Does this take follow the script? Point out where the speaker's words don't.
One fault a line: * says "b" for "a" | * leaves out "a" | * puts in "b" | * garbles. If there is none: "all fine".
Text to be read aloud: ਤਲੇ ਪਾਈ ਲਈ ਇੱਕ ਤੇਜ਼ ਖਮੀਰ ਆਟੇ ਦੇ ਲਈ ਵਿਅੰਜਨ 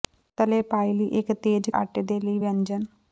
* leaves out "ਖਮੀਰ"